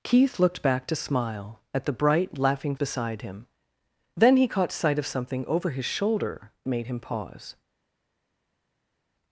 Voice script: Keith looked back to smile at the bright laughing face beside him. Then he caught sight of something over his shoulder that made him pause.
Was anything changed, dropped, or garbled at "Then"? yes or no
no